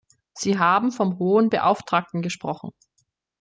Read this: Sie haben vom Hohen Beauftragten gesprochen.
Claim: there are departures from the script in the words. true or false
false